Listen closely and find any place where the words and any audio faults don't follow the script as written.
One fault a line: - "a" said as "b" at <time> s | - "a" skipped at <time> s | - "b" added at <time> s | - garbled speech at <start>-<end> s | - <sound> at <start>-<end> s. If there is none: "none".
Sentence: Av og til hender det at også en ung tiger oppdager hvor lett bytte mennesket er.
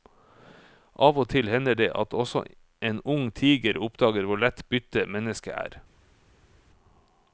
none